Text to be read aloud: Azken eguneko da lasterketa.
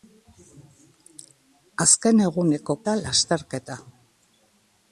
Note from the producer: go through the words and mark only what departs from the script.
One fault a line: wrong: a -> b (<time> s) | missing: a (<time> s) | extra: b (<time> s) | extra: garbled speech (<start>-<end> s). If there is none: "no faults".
no faults